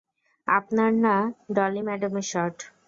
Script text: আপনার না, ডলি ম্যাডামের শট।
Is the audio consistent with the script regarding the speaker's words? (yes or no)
yes